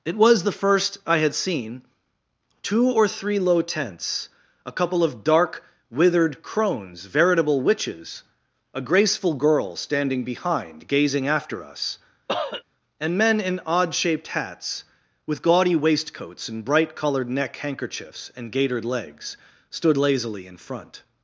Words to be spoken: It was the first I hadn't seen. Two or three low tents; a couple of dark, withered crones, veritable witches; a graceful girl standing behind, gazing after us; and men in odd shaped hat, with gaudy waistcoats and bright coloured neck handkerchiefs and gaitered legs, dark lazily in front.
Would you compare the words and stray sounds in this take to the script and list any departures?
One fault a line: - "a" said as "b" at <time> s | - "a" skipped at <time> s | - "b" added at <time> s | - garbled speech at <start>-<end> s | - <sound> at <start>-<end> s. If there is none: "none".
- "hadn't" said as "had" at 1.2 s
- cough at 12.3-12.6 s
- "hat" said as "hats" at 14.3 s
- "dark" said as "stood" at 19.7 s